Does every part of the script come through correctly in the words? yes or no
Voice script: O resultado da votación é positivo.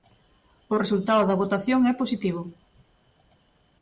yes